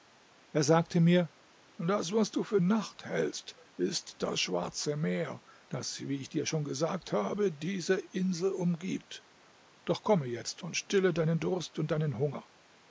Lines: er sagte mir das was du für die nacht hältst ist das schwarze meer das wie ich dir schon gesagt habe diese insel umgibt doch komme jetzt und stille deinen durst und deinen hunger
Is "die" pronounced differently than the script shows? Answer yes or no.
yes